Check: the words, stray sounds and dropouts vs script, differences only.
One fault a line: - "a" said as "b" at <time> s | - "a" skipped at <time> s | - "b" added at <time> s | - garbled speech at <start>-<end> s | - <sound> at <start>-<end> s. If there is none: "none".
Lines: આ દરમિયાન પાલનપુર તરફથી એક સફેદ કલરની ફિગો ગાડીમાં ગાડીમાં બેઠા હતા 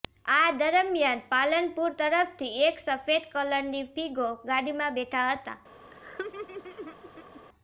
- "ગાડીમાં" skipped at 5.0 s
- laugh at 5.9-7.4 s